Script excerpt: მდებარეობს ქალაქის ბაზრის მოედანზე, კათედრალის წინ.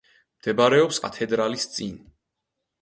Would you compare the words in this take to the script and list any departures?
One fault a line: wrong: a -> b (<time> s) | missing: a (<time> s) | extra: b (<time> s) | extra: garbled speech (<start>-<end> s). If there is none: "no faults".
missing: ქალაქის ბაზრის მოედანზე (1.0 s)